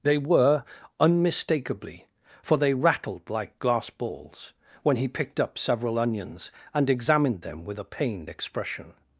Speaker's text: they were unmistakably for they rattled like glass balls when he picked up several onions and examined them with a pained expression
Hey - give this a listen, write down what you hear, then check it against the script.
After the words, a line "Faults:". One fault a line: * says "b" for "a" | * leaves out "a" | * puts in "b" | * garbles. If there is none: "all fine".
they were unmistakably for they rattled like glass balls when he picked up several onions and examined them with a pained expression
Faults:
all fine